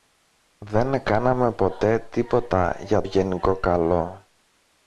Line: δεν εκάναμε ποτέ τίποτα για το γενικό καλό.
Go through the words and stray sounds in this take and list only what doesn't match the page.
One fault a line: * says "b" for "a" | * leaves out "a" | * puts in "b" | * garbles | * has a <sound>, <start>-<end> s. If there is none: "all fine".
* leaves out "το"